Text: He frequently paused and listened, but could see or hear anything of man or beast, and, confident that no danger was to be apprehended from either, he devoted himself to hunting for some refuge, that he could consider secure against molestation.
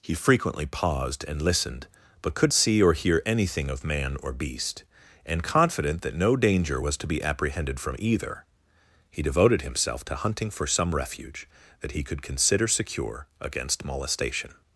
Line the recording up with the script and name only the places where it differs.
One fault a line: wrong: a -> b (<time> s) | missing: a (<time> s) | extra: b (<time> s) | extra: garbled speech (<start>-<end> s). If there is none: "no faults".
no faults